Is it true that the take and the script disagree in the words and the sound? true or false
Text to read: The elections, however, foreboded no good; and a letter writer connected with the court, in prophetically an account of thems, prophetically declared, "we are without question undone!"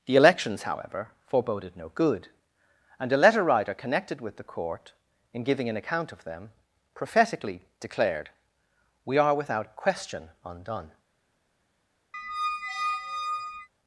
true